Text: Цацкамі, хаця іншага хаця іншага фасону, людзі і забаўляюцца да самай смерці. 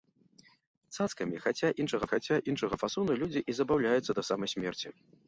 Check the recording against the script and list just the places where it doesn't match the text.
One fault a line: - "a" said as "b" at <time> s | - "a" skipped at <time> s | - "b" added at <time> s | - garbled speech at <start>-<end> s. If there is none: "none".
none